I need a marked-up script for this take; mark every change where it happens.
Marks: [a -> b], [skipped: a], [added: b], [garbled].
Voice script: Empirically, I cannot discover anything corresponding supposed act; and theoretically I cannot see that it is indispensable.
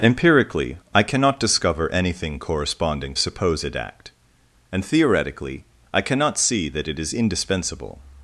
Empirically, I cannot discover anything corresponding supposed act; and theoretically I cannot see that it is indispensable.